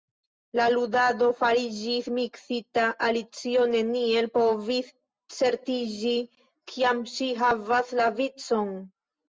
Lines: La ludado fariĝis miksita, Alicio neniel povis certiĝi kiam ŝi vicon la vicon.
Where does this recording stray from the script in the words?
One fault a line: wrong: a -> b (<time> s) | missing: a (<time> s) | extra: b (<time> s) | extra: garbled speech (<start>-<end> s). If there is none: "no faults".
wrong: vicon -> havas (7.5 s)